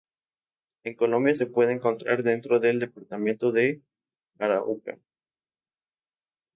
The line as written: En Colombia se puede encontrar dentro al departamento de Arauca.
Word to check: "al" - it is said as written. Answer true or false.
false